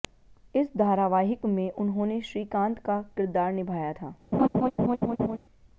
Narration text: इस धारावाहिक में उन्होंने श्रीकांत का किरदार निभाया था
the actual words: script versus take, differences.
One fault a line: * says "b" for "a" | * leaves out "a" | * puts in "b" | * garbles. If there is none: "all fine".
all fine